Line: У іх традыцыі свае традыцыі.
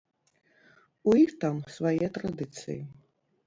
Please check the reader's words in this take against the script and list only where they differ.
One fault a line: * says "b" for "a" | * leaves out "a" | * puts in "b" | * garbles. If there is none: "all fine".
* says "там" for "традыцыі"